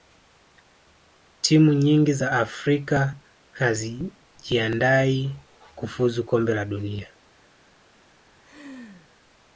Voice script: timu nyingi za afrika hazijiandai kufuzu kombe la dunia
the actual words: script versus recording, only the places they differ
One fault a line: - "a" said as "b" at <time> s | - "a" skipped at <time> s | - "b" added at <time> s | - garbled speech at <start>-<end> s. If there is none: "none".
none